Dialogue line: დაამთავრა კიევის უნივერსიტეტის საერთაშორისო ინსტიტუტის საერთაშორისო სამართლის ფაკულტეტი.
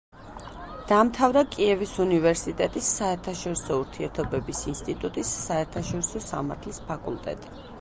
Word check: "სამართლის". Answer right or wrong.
right